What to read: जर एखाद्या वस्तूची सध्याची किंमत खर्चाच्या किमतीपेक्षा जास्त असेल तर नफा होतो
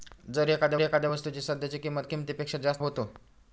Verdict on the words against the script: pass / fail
fail